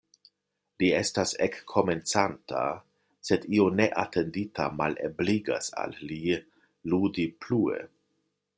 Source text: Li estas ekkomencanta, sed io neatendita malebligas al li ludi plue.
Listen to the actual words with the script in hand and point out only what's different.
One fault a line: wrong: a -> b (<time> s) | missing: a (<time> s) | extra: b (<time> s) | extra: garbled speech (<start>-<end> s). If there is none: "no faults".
no faults